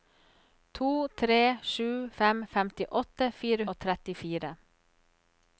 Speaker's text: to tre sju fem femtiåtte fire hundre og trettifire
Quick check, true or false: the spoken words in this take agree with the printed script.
false